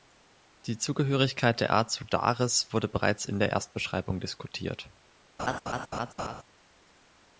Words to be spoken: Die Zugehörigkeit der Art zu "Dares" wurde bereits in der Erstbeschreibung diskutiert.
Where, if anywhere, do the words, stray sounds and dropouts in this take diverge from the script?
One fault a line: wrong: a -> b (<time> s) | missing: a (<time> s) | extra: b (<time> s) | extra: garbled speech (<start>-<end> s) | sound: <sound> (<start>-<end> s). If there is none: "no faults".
sound: laugh (5.4-6.4 s)